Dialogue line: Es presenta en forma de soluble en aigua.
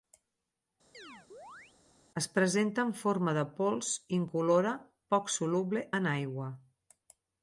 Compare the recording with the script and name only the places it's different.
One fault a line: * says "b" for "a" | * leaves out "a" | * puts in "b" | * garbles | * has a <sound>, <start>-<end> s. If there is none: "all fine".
* has a chirp, 0.9-1.7 s
* puts in "pols incolora poc"